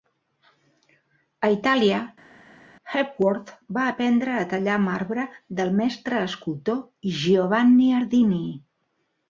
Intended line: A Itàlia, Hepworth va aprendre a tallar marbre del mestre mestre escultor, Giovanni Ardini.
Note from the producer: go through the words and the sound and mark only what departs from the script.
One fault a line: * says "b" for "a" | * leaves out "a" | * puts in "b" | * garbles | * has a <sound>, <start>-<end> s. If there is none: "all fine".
* leaves out "mestre"